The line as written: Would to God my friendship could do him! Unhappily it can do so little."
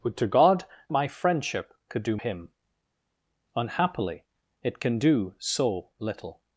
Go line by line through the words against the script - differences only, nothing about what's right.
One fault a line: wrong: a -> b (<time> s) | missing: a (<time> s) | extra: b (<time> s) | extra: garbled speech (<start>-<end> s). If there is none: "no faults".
no faults